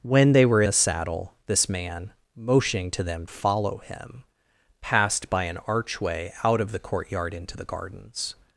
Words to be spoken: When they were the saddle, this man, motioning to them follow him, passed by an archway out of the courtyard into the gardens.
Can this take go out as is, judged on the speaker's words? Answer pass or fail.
pass